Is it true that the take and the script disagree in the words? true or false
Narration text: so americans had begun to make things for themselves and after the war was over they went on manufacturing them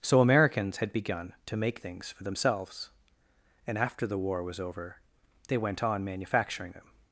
false